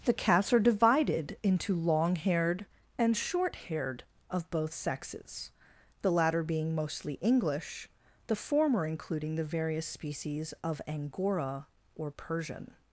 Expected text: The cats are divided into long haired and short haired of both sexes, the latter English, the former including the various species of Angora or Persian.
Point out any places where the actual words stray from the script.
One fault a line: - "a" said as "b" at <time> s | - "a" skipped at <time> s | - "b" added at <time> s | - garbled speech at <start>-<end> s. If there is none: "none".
- "being mostly" added at 6.4 s